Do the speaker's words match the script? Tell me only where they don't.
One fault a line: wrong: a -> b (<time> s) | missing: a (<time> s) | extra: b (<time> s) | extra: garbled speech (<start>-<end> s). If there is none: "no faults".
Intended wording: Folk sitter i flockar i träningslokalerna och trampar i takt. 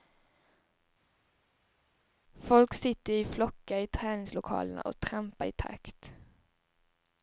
no faults